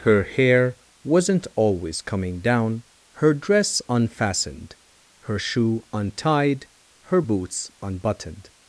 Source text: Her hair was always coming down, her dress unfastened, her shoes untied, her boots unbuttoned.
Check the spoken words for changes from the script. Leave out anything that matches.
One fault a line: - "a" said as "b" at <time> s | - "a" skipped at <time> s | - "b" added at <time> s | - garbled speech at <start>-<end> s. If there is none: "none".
- "was" said as "wasn't" at 1.0 s
- "shoes" said as "shoe" at 5.4 s